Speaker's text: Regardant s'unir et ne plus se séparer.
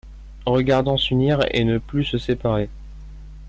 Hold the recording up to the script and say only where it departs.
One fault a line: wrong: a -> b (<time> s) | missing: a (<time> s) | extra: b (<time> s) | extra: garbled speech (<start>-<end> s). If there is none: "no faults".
no faults